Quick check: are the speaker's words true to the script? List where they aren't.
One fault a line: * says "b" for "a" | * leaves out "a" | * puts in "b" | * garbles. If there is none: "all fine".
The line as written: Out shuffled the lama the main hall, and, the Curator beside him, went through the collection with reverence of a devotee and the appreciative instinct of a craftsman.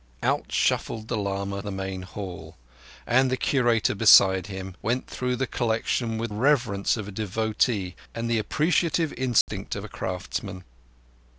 all fine